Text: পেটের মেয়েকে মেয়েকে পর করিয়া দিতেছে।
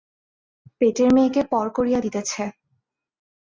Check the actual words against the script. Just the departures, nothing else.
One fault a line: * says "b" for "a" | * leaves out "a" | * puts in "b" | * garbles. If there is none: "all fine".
* leaves out "মেয়েকে"